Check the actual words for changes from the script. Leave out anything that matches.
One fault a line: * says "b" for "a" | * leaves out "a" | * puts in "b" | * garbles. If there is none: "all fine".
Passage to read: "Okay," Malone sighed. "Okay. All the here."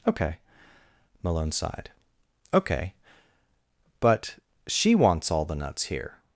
* puts in "But she wants"
* puts in "nuts"